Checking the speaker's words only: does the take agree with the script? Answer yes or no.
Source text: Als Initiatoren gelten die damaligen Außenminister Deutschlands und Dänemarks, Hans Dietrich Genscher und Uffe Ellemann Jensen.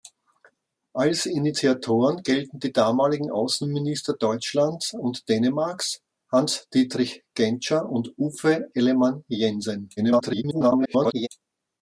no